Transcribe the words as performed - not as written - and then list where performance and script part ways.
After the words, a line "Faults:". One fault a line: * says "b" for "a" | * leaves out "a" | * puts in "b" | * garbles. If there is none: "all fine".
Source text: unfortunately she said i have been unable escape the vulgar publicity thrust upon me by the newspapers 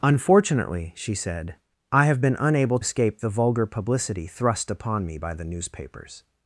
unfortunately she said i have been unable escape the vulgar publicity thrust upon me by the newspapers
Faults:
all fine